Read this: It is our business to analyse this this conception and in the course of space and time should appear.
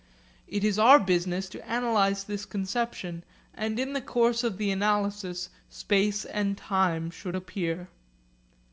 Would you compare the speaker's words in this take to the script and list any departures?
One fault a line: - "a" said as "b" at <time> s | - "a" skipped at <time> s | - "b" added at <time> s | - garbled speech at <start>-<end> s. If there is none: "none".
- "this" skipped at 2.4 s
- "the analysis" added at 4.6 s